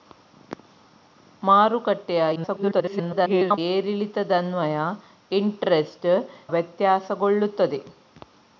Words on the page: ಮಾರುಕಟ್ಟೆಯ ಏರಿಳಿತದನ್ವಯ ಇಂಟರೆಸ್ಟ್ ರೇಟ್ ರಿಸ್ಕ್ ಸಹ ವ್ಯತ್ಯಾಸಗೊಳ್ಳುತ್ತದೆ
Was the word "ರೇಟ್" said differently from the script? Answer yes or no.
yes